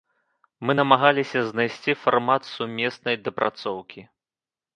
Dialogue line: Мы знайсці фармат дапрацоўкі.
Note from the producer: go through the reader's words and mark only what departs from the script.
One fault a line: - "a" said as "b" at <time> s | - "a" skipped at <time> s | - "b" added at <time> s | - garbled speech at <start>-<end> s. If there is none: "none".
- "намагаліся" added at 0.8 s
- "сумеснай" added at 2.5 s